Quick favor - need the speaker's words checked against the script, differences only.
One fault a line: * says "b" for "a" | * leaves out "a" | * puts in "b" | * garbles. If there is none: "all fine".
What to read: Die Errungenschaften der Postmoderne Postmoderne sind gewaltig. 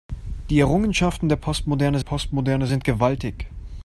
all fine